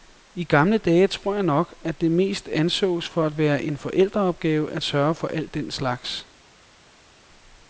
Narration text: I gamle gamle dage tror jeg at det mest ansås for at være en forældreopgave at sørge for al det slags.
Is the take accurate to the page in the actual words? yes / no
no